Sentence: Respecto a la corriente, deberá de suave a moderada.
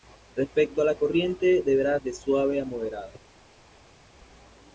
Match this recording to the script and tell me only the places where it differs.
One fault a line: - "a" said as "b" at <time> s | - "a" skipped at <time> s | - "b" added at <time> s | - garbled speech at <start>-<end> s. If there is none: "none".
none